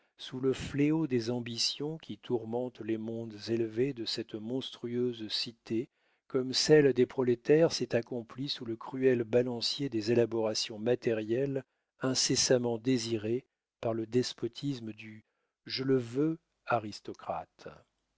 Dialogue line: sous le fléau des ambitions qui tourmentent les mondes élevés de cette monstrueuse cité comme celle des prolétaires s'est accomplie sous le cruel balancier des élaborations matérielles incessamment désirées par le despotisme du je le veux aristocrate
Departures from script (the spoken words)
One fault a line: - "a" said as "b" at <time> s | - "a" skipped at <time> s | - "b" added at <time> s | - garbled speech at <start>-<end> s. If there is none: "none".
none